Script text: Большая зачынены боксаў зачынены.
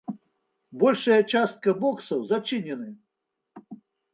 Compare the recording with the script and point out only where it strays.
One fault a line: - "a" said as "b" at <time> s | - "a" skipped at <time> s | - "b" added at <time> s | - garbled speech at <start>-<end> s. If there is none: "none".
- "зачынены" said as "частка" at 1.3 s